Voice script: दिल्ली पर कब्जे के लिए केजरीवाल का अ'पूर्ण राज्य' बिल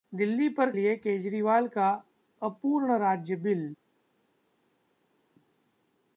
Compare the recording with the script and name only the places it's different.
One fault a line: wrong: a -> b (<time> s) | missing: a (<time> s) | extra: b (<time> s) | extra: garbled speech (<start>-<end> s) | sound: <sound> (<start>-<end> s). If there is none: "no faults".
missing: कब्जे के (0.7 s)